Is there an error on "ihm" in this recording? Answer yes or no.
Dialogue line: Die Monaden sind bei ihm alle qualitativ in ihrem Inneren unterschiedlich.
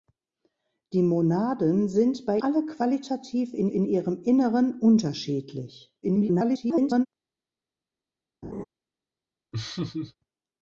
yes